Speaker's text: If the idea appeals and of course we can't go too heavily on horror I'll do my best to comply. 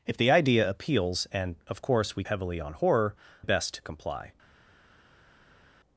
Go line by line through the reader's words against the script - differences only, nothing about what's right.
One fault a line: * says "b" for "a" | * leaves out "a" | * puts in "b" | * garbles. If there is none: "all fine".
* leaves out "can't go too"
* leaves out "I'll do my"